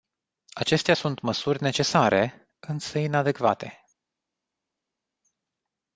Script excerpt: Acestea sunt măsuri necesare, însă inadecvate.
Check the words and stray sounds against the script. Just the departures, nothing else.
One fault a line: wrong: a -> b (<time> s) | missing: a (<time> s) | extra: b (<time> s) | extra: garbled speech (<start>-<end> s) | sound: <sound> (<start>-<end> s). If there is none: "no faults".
no faults